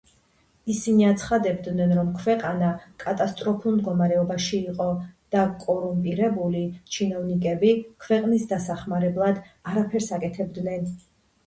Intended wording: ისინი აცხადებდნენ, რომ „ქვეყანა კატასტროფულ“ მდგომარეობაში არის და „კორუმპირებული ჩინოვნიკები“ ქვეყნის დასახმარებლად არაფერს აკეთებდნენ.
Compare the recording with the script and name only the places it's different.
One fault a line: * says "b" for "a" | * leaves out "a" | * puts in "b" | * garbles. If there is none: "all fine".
* says "იყო" for "არის"